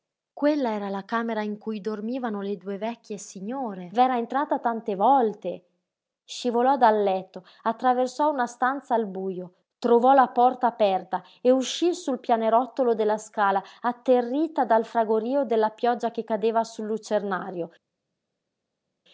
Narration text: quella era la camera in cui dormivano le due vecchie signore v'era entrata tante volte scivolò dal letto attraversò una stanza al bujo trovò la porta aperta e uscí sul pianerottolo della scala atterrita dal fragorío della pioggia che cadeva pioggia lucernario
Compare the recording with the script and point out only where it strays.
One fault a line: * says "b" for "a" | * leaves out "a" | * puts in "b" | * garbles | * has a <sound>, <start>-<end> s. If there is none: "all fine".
* says "sul" for "pioggia"